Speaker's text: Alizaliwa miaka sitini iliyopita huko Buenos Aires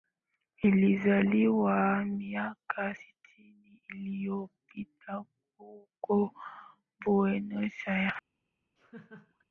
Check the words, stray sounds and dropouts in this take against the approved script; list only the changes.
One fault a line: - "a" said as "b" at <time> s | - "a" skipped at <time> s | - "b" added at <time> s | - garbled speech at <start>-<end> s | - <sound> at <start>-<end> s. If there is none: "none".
- laugh at 8.8-9.4 s